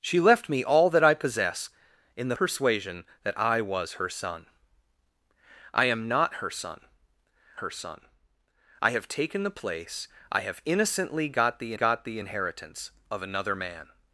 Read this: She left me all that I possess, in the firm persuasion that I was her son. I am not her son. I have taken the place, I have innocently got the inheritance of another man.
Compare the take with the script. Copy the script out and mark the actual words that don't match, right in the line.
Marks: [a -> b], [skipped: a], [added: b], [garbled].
She left me all that I possess, in the [skipped: firm] persuasion that I was her son. I am not her son. [added: her son] I have taken the place, I have innocently got the [added: got the] inheritance of another man.